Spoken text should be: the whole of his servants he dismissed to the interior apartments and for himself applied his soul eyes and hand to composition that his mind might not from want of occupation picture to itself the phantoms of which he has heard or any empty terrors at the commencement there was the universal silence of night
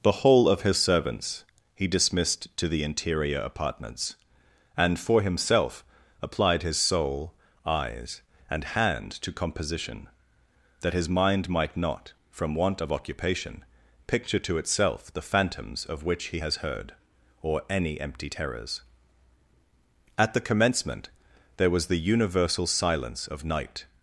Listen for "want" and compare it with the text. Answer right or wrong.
right